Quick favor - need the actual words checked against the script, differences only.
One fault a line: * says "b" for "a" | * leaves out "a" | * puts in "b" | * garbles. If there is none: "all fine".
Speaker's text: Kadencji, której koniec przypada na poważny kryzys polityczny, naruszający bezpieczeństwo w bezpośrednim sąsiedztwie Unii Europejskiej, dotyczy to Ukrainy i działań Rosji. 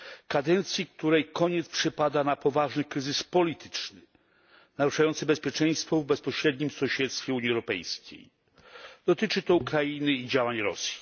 all fine